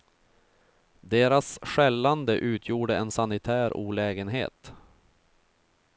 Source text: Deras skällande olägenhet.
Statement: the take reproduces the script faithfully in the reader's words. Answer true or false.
false